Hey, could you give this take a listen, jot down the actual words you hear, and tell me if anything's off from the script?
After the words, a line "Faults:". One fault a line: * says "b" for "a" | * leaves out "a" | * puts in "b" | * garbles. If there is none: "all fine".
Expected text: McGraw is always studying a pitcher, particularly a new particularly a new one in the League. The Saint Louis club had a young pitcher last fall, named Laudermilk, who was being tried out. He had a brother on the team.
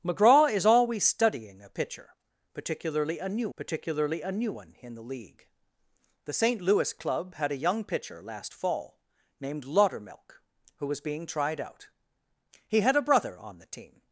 McGraw is always studying a pitcher, particularly a new particularly a new one in the League. The Saint Louis club had a young pitcher last fall, named Laudermilk, who was being tried out. He had a brother on the team.
Faults:
all fine